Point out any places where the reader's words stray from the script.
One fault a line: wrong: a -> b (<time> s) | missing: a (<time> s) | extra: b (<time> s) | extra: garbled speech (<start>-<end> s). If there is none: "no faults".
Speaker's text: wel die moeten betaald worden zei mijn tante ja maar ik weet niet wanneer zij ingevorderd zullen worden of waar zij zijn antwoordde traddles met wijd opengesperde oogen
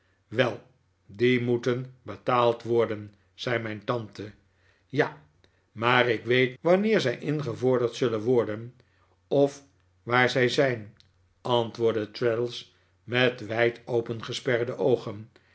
missing: niet (6.6 s)